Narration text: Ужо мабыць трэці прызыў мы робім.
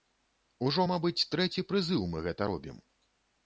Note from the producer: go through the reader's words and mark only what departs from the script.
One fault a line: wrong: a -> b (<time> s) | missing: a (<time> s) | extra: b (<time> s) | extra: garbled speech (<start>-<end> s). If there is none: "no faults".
extra: гэта (2.3 s)